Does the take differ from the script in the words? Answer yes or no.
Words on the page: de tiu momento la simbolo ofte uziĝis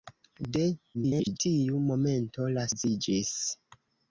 yes